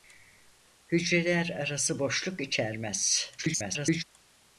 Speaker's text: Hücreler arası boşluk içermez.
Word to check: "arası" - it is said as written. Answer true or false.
true